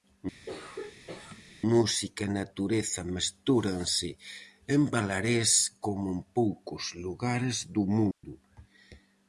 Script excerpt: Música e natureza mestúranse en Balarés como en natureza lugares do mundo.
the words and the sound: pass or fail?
fail